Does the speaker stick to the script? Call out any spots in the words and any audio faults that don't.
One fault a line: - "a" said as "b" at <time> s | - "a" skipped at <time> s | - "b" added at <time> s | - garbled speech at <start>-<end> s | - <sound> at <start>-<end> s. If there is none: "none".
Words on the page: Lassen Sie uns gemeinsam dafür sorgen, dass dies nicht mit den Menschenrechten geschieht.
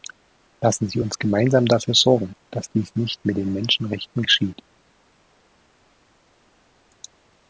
none